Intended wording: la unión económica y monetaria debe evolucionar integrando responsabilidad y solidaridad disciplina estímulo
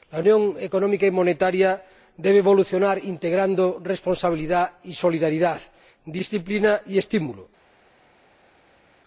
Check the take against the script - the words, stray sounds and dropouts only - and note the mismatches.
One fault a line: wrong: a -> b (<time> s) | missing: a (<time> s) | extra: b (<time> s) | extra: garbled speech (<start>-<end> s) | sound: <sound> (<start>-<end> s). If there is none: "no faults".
extra: y (6.9 s)